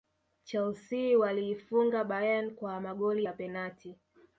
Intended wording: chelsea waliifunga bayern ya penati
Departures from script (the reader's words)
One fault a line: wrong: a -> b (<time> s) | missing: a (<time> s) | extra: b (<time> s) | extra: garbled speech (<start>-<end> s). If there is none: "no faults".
extra: kwa magoli (2.5 s)